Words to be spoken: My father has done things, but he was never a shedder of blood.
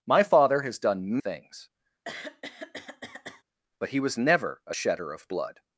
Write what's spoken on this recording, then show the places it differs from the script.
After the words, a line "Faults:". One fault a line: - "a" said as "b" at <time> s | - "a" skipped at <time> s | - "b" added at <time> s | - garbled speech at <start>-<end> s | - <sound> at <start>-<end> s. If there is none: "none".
My father has done things, but he was never a shedder of blood.
Faults:
- throat clearing at 2.1-3.4 s